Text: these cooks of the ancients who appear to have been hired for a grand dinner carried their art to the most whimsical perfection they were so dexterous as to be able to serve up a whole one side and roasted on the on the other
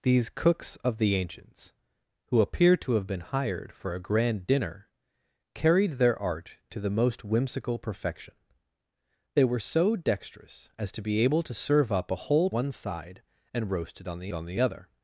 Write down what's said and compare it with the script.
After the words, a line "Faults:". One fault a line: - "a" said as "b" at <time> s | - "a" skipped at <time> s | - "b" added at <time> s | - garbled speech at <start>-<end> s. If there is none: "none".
these cooks of the ancients who appear to have been hired for a grand dinner carried their art to the most whimsical perfection they were so dexterous as to be able to serve up a whole one side and roasted on the on the other
Faults:
none